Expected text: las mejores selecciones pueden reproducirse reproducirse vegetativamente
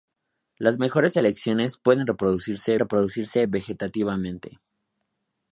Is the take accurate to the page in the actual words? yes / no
yes